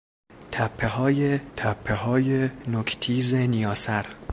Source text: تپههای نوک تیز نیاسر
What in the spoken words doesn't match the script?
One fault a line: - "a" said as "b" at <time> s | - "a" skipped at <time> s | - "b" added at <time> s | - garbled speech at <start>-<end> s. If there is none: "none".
- "تپههای" added at 1.6 s